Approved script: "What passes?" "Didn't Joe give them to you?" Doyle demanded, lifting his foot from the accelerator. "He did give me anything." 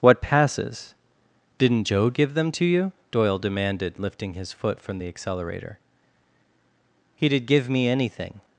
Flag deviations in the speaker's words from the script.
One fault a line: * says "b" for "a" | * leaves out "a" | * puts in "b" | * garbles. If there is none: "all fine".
all fine